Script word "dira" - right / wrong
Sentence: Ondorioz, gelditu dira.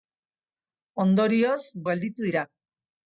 right